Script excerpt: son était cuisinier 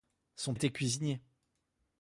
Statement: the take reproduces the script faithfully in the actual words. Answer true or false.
true